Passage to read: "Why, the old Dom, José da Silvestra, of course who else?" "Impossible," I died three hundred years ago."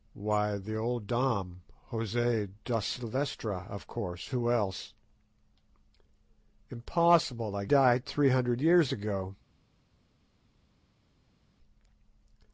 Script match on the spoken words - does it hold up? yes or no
yes